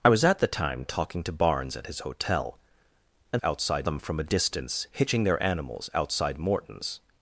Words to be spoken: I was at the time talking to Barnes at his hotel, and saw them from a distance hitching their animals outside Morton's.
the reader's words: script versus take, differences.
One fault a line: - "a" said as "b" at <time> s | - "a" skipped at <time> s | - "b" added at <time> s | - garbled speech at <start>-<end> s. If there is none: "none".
- "saw" said as "outside" at 3.4 s